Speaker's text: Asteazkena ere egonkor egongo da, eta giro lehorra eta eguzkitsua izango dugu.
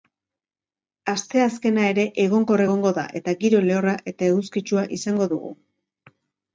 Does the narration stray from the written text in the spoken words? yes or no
no